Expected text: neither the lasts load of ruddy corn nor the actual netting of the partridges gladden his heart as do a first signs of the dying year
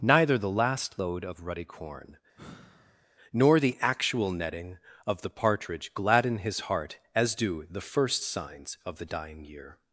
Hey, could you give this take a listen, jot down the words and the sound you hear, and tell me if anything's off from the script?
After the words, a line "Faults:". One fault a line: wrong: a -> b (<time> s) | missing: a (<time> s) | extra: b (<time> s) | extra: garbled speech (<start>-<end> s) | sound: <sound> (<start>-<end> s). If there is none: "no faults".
neither the last load of ruddy corn nor the actual netting of the partridge gladden his heart as do the first signs of the dying year
Faults:
wrong: lasts -> last (0.5 s)
sound: sigh (2.3-3.1 s)
wrong: partridges -> partridge (5.3 s)
wrong: a -> the (7.7 s)